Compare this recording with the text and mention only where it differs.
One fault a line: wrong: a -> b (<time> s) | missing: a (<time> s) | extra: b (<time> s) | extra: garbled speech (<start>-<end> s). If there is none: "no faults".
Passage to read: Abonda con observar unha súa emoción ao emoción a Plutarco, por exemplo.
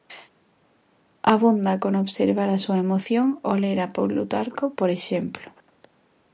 wrong: unha -> a (2.5 s)
wrong: emoción -> ler (3.6 s)